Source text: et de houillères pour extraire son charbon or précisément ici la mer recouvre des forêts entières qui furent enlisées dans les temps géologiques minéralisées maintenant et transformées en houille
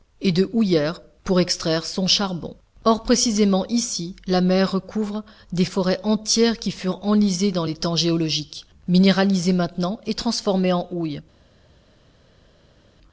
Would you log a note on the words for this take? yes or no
no